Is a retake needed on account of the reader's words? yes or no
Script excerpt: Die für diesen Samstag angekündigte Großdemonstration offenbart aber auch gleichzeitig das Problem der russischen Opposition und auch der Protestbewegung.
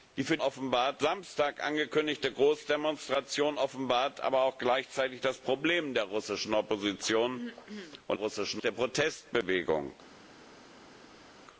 yes